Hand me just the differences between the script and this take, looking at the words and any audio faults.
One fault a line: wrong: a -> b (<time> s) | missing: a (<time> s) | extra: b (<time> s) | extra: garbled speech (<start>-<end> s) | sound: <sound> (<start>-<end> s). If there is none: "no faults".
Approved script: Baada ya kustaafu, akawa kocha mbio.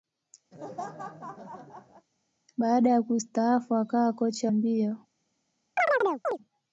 sound: laugh (0.5-2.1 s)
sound: chirp (5.8-6.4 s)